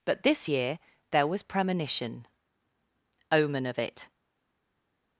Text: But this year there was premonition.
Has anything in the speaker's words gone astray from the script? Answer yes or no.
yes